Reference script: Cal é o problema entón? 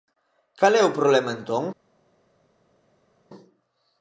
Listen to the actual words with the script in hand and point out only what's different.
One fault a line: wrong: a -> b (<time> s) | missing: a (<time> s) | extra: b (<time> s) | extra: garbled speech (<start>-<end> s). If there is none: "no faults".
no faults